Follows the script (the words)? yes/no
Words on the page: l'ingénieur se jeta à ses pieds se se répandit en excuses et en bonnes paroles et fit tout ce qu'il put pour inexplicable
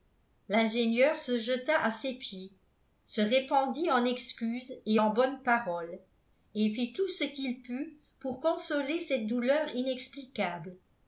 no